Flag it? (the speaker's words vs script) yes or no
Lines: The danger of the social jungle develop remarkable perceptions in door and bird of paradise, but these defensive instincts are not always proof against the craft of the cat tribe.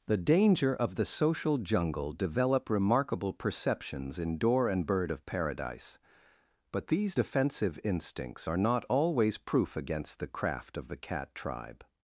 no